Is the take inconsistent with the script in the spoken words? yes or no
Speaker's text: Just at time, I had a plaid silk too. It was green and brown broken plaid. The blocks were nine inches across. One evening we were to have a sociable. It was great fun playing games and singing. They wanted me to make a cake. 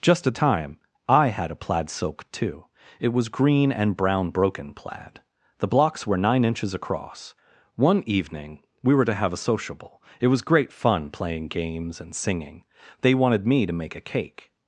no